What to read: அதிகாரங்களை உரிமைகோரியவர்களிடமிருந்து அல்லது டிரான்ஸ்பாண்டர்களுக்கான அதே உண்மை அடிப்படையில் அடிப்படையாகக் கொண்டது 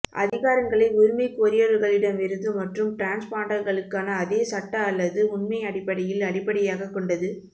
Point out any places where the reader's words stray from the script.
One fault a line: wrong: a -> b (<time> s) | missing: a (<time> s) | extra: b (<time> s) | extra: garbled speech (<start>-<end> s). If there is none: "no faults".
wrong: அல்லது -> மற்றும் (2.5 s)
extra: சட்ட அல்லது (4.5 s)